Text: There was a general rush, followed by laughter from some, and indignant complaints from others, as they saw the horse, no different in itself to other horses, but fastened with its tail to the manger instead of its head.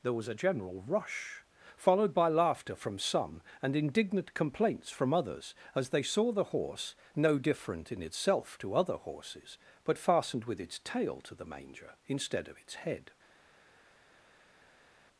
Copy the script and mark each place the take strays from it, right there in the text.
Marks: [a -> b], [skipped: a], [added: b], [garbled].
There was a general rush, followed by laughter from some, and indignant complaints from others, as they saw the horse, no different in itself to other horses, but fastened with its tail to the manger instead of its head.